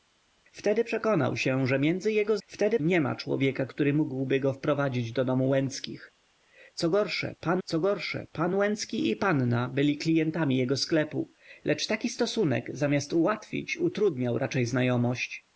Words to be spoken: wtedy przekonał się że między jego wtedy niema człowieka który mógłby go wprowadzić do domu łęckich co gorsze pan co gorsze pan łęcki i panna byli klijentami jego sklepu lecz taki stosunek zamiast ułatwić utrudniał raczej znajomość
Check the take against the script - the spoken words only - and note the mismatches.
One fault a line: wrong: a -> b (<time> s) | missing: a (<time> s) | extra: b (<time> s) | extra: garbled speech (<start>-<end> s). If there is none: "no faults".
no faults